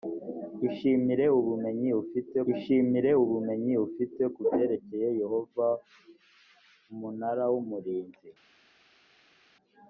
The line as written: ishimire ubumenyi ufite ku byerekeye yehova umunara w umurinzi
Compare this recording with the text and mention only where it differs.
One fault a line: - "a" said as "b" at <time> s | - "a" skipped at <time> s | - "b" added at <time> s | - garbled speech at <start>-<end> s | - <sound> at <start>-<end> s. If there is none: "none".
- "ishimire ubumenyi ufite" added at 2.5 s